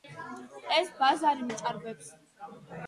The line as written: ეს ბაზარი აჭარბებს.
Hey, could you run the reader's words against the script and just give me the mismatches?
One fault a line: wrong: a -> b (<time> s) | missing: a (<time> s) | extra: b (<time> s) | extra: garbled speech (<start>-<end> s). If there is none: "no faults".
no faults